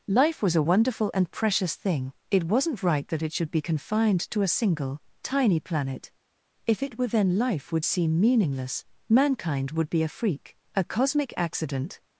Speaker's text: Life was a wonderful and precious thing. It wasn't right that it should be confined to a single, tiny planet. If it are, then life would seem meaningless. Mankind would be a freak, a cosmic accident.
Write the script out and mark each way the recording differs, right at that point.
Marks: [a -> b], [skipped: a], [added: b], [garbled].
Life was a wonderful and precious thing. It wasn't right that it should be confined to a single, tiny planet. If it [are, -> were] then life would seem meaningless. Mankind would be a freak, a cosmic accident.